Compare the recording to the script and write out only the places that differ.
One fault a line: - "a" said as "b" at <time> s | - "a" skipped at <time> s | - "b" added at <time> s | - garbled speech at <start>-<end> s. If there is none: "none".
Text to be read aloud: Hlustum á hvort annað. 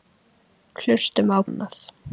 - "hvort" skipped at 1.4 s